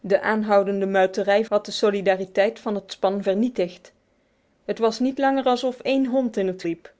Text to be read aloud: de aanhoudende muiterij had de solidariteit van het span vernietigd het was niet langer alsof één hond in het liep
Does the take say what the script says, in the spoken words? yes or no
yes